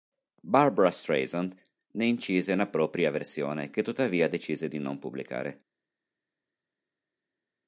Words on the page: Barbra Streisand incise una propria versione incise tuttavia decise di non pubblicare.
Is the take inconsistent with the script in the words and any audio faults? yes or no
yes